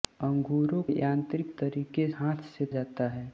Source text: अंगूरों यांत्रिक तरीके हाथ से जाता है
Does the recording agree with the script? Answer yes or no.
yes